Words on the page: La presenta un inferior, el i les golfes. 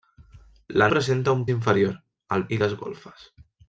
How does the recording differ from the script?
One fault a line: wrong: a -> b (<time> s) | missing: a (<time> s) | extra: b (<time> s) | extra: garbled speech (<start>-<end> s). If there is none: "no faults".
no faults